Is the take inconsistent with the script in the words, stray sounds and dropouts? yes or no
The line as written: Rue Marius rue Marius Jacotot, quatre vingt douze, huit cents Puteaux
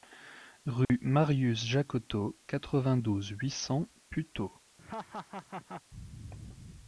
yes